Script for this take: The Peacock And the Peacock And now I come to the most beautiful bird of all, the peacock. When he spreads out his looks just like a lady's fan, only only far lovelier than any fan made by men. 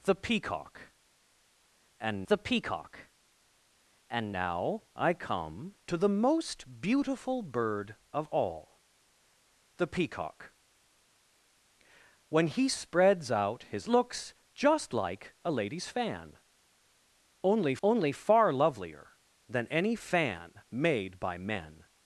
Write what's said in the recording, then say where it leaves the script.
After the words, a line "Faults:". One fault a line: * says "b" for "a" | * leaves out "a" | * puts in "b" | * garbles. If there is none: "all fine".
The Peacock And the Peacock And now I come to the most beautiful bird of all, the peacock. When he spreads out his looks just like a lady's fan, only only far lovelier than any fan made by men.
Faults:
all fine